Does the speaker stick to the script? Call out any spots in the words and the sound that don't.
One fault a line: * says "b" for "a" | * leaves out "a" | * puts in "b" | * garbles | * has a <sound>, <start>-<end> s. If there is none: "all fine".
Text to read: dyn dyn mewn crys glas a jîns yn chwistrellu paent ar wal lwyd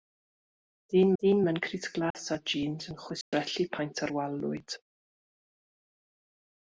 * has a dropout, 2.1-2.1 s
* has a dropout, 3.2-3.3 s